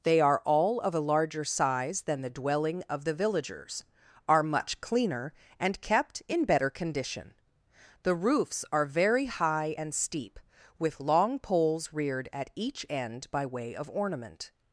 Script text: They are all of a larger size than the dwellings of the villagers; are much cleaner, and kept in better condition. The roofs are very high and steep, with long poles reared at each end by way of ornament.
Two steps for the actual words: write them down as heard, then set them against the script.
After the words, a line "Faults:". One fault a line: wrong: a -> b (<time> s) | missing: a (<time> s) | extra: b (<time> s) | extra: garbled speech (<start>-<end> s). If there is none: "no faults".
They are all of a larger size than the dwelling of the villagers; are much cleaner, and kept in better condition. The roofs are very high and steep, with long poles reared at each end by way of ornament.
Faults:
wrong: dwellings -> dwelling (2.3 s)